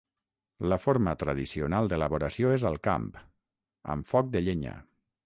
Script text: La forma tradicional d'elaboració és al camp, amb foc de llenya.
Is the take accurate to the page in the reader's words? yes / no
yes